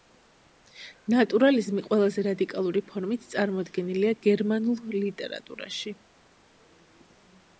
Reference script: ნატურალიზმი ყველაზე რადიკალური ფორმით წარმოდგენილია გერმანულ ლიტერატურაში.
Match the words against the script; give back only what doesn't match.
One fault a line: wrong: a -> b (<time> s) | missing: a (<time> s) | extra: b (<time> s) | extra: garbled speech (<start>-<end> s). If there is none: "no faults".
no faults